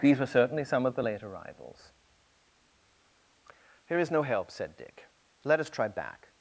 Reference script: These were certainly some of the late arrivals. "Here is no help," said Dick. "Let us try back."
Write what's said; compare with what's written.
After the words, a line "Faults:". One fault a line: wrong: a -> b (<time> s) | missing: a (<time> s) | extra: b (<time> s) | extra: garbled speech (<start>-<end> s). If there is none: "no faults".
These were certainly some of the late arrivals. "Here is no help," said Dick. "Let us try back."
Faults:
no faults